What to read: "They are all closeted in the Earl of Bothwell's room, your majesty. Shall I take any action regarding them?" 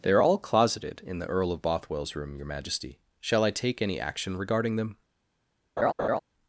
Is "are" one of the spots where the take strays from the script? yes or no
no